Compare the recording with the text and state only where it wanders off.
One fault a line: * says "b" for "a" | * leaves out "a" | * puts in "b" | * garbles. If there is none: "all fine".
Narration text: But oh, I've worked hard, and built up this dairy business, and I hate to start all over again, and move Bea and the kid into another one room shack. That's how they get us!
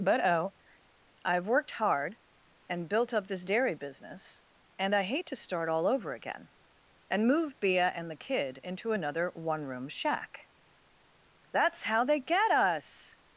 all fine